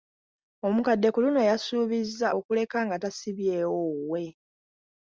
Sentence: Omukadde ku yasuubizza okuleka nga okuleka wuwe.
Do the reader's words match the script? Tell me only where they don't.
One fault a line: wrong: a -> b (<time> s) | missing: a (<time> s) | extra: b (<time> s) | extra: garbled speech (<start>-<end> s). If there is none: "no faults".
extra: luno (1.2 s)
wrong: okuleka -> tasibyewo (3.0 s)